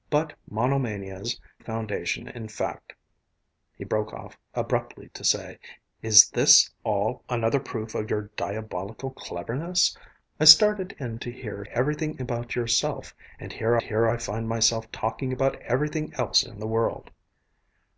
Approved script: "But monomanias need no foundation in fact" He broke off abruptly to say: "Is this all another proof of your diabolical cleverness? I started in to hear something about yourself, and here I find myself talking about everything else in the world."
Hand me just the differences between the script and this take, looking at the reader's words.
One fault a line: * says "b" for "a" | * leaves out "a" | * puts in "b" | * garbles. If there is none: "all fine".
* leaves out "need no"
* says "everything" for "something"
* puts in "here"